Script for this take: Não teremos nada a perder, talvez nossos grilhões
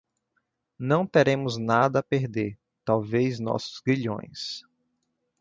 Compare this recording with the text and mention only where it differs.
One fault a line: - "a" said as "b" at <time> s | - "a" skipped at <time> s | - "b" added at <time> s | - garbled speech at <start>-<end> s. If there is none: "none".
none